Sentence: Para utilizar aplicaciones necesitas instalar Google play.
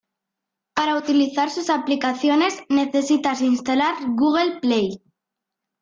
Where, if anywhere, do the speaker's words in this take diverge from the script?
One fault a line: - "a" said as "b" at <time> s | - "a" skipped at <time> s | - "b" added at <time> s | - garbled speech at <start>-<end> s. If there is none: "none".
- "sus" added at 1.5 s